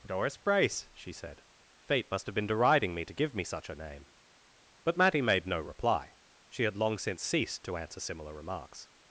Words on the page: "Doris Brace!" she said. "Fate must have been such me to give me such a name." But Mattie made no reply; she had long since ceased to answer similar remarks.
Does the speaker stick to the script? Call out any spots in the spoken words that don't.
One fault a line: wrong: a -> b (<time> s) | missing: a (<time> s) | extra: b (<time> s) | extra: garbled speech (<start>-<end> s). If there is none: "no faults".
wrong: such -> deriding (2.5 s)